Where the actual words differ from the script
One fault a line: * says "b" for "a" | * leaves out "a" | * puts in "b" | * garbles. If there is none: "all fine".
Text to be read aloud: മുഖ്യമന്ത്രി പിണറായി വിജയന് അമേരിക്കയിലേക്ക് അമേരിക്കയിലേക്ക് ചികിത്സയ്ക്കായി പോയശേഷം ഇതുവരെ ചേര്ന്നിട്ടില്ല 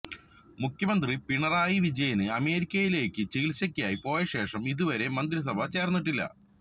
* leaves out "അമേരിക്കയിലേക്ക്"
* puts in "മന്ത്രിസഭ"